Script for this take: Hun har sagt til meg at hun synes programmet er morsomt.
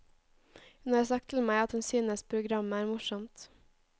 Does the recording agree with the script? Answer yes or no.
yes